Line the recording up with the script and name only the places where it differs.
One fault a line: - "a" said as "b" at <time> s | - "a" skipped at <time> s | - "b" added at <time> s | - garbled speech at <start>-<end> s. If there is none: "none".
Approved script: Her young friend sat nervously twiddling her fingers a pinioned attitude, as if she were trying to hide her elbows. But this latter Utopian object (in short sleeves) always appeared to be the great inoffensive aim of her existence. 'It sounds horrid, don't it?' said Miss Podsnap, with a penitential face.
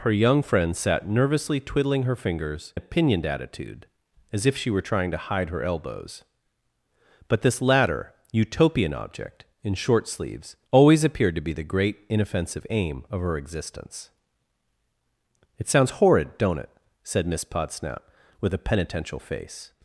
none